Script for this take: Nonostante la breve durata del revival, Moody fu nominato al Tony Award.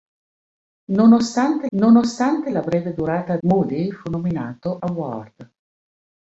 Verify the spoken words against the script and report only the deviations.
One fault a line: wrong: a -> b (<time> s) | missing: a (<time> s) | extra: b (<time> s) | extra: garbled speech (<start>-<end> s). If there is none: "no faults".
extra: nonostante (1.8 s)
missing: del revival (3.4 s)
missing: al Tony (4.8 s)